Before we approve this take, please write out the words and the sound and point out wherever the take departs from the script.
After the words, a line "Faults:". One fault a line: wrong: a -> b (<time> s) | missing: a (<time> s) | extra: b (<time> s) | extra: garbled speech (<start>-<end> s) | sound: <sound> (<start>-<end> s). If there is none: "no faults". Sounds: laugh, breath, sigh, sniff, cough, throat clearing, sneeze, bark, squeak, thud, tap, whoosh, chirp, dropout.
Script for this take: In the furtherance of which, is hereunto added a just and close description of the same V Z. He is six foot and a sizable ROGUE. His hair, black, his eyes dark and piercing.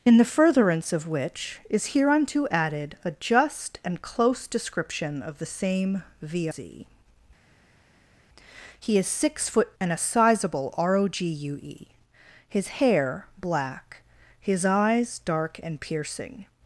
In the furtherance of which, is hereunto added a just and close description of the same V Z. He is six foot and a sizable ROGUE. His hair, black, his eyes dark and piercing.
Faults:
no faults